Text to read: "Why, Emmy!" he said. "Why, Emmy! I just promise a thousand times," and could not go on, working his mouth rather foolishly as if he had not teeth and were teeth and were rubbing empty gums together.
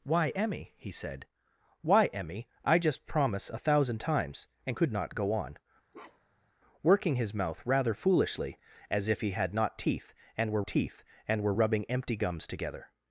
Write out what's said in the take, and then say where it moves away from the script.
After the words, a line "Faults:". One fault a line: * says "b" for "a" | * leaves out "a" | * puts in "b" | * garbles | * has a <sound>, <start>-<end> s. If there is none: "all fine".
"Why, Emmy!" he said. "Why, Emmy! I just promise a thousand times," and could not go on, working his mouth rather foolishly as if he had not teeth and were teeth and were rubbing empty gums together.
Faults:
* has a bark, 5.9-6.5 s